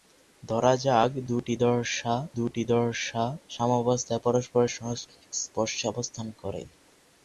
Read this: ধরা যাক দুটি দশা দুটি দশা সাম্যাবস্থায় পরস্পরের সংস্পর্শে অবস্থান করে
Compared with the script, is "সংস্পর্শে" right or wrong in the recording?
right